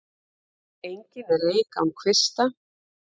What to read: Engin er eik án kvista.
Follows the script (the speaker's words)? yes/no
yes